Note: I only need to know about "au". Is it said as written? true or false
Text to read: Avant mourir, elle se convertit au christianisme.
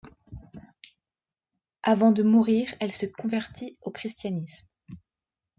true